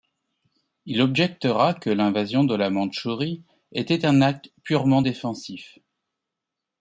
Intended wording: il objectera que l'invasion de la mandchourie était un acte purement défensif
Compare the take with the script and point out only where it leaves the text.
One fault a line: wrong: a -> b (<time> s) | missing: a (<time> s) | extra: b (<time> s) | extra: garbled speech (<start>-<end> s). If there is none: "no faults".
no faults